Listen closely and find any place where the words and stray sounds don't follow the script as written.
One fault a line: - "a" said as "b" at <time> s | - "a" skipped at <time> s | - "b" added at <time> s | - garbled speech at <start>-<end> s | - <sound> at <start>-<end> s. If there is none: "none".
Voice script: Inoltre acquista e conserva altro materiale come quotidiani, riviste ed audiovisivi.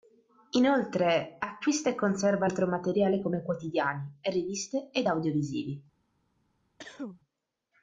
- cough at 6.8-7.2 s